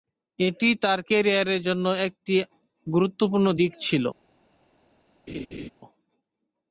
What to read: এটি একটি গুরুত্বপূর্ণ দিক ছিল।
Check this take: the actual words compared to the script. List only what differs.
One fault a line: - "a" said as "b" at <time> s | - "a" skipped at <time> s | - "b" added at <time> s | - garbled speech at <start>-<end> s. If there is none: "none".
- "তার ক্যারিয়ারের জন্য" added at 0.8 s